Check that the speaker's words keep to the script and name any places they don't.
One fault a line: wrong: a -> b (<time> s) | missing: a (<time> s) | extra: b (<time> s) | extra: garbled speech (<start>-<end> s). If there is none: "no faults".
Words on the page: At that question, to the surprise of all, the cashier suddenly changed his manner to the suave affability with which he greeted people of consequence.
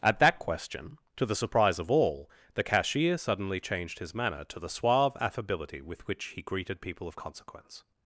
no faults